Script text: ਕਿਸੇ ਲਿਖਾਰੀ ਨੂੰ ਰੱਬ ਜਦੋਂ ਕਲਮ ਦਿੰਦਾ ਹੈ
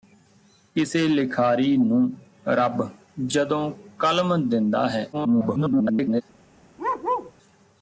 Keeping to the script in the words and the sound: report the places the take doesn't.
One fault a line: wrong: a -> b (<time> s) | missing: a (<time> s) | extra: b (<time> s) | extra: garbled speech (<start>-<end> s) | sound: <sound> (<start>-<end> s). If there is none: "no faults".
extra: garbled speech (5.1-6.2 s)
sound: bark (6.8-7.3 s)